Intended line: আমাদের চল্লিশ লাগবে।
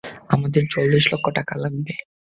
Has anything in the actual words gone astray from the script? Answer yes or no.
yes